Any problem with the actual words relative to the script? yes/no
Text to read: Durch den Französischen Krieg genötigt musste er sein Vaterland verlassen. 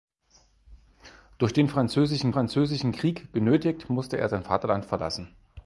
yes